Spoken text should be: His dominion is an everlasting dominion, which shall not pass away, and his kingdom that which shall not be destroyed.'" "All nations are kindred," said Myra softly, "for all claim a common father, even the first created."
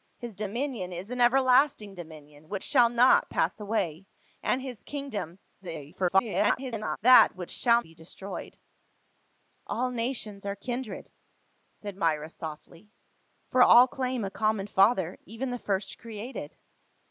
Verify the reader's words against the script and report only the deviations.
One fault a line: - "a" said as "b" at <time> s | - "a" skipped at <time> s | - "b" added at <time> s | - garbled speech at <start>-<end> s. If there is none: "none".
- garbled speech at 5.6-7.0 s
- "not" skipped at 7.8 s